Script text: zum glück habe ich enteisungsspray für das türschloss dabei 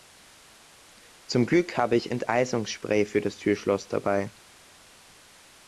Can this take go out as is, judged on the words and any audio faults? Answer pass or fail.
pass